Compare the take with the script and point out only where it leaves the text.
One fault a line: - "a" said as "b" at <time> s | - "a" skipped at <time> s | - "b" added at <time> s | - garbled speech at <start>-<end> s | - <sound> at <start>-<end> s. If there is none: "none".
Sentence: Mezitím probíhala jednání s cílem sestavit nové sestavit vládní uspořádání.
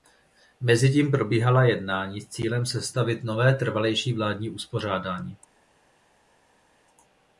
- "sestavit" said as "trvalejší" at 3.5 s